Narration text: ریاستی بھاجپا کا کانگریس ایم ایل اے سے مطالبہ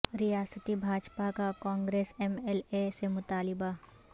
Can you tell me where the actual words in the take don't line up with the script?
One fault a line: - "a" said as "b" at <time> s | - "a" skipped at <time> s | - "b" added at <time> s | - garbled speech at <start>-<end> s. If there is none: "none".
none